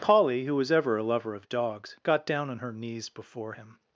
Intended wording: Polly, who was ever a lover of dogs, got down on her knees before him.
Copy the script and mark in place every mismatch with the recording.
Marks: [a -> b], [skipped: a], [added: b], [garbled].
Polly, who was ever a lover of dogs, got down on her knees before him.